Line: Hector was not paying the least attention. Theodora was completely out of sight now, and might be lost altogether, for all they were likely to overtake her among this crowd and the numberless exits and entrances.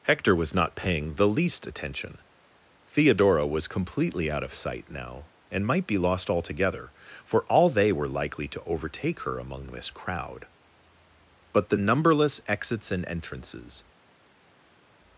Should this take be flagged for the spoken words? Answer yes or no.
yes